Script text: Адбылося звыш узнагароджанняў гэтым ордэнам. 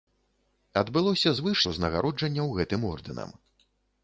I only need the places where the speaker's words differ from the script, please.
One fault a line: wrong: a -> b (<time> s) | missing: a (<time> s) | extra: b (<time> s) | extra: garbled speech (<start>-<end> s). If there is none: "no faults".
no faults